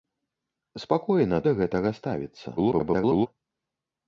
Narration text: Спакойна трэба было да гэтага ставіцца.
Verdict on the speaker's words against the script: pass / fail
fail